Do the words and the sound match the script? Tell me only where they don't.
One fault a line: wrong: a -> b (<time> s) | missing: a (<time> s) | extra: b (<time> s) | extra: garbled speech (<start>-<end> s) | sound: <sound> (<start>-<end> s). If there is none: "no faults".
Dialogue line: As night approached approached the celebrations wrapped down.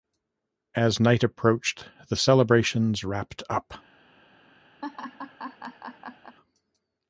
missing: approached (1.9 s)
wrong: down -> up (3.5 s)
sound: laugh (4.8-6.4 s)